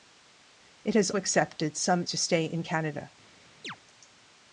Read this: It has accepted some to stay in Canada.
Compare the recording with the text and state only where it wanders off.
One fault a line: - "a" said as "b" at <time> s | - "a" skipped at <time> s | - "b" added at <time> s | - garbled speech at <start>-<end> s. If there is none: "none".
none